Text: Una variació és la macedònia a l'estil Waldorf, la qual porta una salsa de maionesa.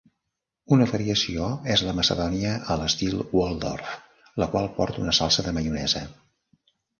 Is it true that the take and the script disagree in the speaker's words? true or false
false